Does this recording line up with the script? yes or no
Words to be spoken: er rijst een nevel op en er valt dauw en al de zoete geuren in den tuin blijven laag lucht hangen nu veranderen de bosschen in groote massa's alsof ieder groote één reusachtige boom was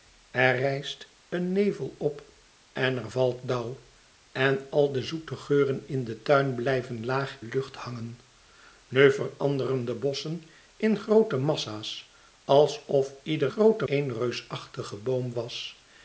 yes